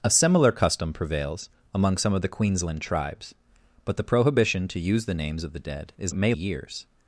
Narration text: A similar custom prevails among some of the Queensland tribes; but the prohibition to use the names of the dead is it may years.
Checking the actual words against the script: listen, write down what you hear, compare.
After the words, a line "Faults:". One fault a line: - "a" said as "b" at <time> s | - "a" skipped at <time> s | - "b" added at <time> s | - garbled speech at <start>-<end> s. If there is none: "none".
A similar custom prevails among some of the Queensland tribes; but the prohibition to use the names of the dead is it may years.
Faults:
none